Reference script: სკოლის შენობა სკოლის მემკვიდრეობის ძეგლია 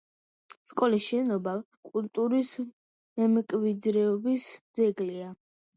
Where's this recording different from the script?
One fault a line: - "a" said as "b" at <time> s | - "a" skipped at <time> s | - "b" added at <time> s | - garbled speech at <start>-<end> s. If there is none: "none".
- "სკოლის" said as "კულტურის" at 1.9 s